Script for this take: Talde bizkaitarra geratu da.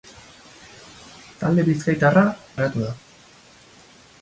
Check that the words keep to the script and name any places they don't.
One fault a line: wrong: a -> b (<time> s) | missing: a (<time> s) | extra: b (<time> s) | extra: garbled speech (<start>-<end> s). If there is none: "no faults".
no faults